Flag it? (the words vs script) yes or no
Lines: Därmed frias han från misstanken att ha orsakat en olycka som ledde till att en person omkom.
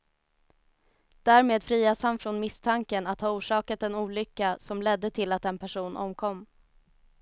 no